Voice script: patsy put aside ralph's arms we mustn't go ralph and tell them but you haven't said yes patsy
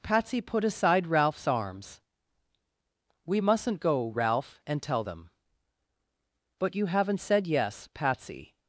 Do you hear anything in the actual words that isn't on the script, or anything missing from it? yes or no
no